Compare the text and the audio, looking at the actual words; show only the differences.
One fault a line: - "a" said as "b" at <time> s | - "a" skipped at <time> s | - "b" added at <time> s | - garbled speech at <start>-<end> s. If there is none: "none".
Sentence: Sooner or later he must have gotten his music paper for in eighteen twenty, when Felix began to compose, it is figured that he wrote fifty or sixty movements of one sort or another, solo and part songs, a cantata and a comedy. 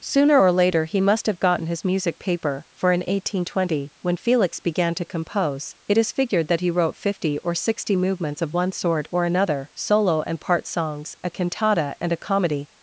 none